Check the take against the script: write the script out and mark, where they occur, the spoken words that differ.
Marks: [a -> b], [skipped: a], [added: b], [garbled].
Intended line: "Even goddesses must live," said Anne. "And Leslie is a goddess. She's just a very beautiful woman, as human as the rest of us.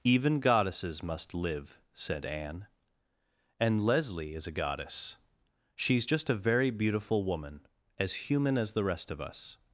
"Even goddesses must live," said Anne. "And Leslie is a goddess. She's just a very beautiful woman, as human as the rest of us.